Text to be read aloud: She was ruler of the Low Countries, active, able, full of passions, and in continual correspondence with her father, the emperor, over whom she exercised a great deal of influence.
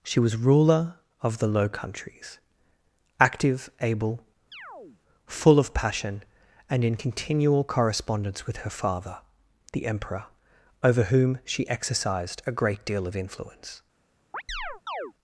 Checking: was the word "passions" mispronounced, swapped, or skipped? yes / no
yes